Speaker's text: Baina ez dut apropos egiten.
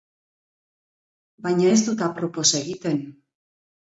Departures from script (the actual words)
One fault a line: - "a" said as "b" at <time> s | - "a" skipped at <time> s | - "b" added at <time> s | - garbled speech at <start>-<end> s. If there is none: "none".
none